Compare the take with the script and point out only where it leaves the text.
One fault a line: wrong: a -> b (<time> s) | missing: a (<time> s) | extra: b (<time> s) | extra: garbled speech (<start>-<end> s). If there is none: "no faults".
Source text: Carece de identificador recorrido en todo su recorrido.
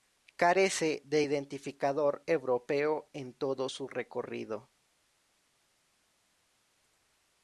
wrong: recorrido -> europeo (2.3 s)